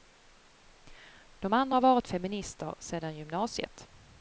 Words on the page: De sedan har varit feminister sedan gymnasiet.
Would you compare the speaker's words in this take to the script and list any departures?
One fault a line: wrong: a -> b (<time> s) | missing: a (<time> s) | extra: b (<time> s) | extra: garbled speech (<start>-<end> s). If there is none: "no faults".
wrong: sedan -> andra (1.5 s)